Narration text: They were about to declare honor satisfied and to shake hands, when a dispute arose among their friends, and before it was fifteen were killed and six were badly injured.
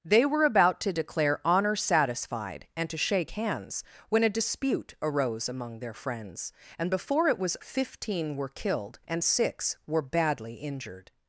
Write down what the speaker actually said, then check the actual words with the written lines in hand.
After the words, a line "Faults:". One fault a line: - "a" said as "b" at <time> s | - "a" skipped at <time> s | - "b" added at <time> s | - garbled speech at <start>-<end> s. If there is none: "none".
They were about to declare honor satisfied and to shake hands, when a dispute arose among their friends, and before it was fifteen were killed and six were badly injured.
Faults:
none